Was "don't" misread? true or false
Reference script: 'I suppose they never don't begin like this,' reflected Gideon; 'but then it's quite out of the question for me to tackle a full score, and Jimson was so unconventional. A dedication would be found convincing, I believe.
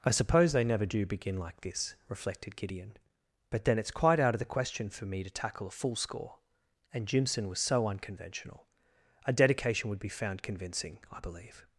true